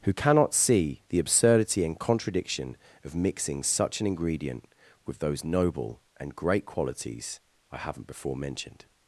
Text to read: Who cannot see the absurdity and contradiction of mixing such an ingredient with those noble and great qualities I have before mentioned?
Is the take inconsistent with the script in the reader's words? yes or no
yes